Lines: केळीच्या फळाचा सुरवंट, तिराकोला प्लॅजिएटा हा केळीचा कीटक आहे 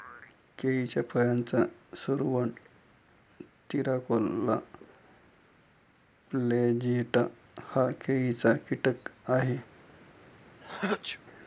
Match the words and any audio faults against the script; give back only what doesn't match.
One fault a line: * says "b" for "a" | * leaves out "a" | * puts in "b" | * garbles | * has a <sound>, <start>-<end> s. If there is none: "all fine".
* has a sneeze, 10.6-11.2 s